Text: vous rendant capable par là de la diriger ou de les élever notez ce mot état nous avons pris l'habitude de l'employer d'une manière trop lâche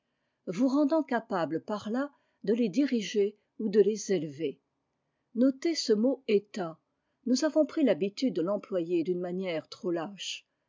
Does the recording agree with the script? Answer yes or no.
no